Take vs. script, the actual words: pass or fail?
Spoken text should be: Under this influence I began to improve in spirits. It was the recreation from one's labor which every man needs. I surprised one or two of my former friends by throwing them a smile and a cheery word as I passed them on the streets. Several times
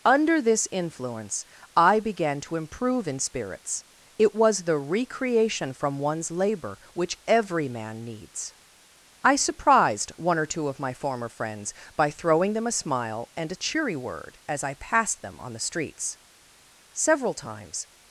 pass